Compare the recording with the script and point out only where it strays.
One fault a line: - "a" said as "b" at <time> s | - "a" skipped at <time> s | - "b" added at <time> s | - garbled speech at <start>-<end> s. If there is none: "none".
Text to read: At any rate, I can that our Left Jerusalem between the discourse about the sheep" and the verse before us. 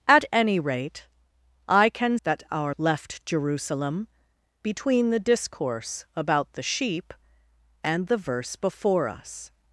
none